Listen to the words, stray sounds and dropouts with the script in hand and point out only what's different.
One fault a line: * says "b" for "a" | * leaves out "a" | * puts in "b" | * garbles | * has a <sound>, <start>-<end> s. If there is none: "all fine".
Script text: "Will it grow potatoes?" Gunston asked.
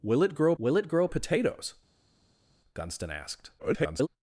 * puts in "will it grow"
* garbles